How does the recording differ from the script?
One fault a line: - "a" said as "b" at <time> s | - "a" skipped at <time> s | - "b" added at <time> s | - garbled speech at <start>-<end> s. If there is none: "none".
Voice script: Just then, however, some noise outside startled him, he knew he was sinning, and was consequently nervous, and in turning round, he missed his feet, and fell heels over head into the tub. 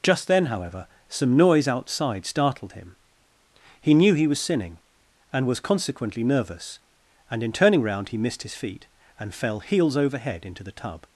none